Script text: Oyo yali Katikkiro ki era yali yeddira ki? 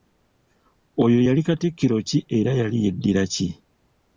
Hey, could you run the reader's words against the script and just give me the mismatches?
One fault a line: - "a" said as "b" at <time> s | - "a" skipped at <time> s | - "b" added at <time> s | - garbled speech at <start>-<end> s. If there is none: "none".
none